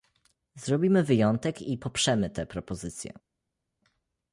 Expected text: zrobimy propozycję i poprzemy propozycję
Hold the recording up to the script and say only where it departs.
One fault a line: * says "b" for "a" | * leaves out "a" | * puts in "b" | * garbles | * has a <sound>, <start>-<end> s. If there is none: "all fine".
* says "wyjątek" for "propozycję"
* puts in "tę"